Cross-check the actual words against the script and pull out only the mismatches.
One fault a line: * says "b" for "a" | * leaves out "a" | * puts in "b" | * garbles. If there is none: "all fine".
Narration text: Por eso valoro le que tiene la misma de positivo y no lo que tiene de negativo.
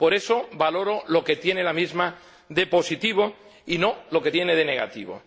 * says "lo" for "le"